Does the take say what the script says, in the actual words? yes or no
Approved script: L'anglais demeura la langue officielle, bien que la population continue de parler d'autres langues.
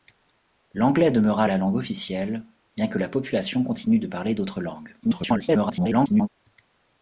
no